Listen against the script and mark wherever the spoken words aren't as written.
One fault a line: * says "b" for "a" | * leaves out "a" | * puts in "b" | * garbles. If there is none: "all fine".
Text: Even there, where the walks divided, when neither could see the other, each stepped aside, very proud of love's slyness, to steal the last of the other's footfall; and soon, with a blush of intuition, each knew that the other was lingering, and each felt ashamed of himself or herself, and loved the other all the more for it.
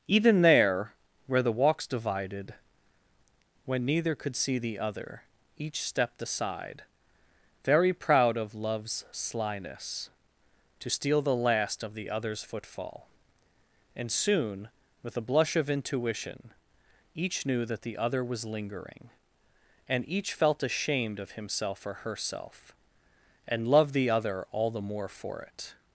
all fine